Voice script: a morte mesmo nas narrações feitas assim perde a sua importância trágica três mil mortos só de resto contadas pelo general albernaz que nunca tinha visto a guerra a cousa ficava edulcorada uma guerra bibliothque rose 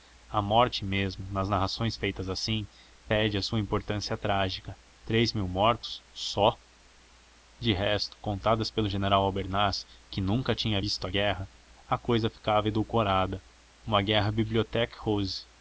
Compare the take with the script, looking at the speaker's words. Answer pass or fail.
pass